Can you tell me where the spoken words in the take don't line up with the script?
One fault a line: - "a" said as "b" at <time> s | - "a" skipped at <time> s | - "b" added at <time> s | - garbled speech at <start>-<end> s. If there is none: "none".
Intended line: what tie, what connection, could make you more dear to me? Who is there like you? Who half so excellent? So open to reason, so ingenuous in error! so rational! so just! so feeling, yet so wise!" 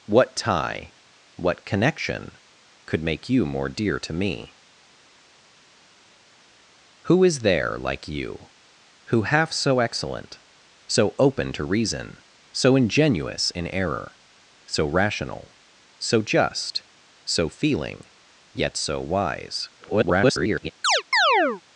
- garbled speech at 19.8-20.7 s